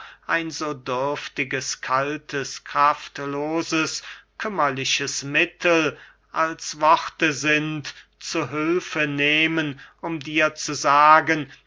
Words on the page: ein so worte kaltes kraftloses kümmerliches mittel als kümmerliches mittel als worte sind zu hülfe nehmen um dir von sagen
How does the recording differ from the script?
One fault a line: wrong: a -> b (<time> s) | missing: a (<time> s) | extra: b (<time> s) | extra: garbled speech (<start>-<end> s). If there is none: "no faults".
wrong: worte -> dürftiges (0.7 s)
missing: kümmerliches mittel als (6.8 s)
wrong: von -> zu (10.5 s)